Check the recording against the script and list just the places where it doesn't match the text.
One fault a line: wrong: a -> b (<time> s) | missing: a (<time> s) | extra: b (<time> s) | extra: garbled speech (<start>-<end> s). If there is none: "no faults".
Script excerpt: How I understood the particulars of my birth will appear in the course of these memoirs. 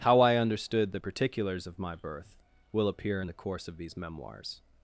no faults